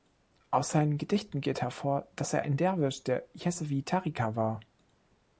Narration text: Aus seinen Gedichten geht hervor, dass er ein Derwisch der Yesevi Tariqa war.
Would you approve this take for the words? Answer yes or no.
yes